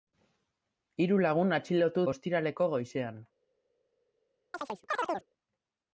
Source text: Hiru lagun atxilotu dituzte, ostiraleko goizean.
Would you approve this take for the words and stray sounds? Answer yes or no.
no